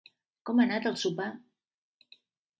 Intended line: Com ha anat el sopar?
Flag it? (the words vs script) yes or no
no